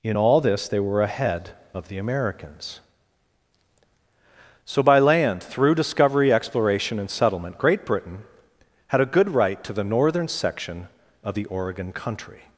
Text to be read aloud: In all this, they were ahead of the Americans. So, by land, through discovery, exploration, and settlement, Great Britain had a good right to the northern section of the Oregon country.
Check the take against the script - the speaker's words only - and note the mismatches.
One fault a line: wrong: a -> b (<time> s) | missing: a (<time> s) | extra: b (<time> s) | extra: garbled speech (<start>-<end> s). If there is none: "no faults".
no faults